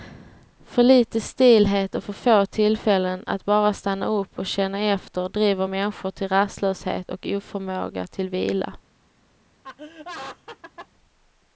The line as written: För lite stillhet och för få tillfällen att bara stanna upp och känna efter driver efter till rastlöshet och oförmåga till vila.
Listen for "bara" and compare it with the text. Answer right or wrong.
right